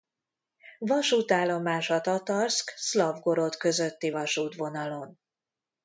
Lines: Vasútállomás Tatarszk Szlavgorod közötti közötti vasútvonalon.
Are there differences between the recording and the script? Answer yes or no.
yes